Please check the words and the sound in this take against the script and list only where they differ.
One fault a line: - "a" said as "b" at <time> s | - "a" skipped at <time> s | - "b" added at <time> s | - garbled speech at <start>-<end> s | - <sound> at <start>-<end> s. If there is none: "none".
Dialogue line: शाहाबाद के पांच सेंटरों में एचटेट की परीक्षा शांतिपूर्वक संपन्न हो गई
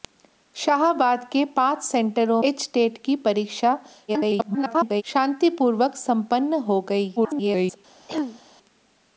- "में" skipped at 2.4 s
- garbled speech at 4.1-5.0 s
- garbled speech at 7.2-7.8 s
- throat clearing at 8.1-8.4 s